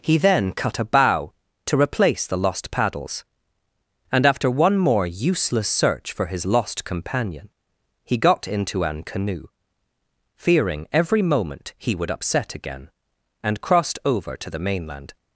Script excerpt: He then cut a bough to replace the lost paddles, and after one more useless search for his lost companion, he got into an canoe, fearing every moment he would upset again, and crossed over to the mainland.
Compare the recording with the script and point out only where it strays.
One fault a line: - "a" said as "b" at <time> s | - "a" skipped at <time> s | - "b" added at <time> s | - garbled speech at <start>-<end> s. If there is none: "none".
none